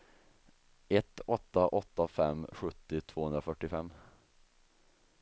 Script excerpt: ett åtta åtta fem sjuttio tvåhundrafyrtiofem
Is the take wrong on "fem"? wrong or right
right